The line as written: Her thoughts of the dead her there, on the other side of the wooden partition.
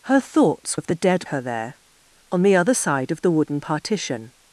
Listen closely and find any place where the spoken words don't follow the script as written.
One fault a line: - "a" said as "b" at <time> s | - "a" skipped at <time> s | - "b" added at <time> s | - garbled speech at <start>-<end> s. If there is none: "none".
none